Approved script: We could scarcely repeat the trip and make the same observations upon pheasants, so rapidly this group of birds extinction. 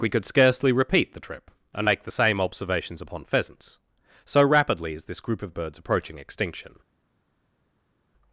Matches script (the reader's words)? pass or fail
fail